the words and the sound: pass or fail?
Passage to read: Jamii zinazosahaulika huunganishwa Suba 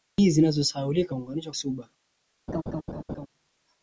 fail